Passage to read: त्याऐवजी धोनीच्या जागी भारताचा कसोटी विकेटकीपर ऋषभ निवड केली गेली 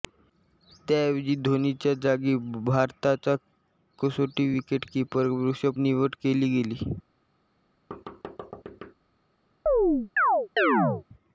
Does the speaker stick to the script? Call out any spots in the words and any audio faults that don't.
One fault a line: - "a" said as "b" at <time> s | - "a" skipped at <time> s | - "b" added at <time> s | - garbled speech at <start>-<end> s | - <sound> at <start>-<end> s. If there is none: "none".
- thud at 7.9-8.9 s
- chirp at 9.7-11.0 s